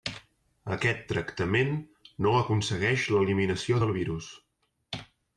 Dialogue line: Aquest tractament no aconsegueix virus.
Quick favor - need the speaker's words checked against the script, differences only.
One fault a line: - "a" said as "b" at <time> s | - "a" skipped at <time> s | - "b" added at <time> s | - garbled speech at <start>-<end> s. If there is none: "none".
- "l'eliminació del" added at 3.1 s